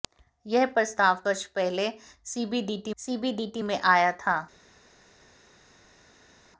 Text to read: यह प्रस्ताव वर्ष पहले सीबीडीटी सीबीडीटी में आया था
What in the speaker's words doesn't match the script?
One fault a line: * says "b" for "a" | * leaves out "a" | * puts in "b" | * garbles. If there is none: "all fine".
all fine